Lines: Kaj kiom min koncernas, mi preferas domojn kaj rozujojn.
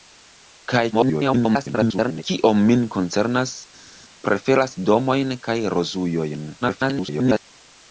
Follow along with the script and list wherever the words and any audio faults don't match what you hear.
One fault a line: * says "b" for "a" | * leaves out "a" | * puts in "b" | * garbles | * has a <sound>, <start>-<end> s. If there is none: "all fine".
* garbles
* leaves out "mi"
* garbles